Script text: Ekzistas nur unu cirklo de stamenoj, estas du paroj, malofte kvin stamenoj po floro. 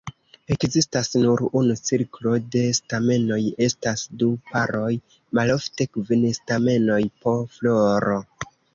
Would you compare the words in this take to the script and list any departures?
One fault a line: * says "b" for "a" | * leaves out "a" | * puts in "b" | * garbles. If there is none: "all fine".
all fine